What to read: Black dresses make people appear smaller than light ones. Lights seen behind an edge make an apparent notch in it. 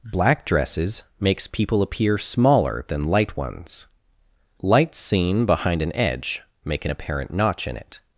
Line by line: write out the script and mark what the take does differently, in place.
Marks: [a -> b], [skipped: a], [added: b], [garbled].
Black dresses [make -> makes] people appear smaller than light ones. Lights seen behind an edge make an apparent notch in it.